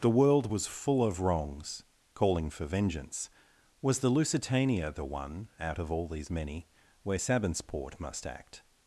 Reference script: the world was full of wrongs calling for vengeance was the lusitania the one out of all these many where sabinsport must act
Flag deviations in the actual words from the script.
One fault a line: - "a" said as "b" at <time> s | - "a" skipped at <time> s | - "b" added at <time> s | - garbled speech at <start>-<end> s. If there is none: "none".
none